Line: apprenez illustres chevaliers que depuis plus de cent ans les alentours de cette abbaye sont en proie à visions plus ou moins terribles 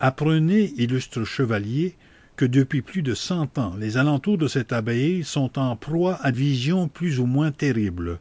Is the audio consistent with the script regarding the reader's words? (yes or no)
yes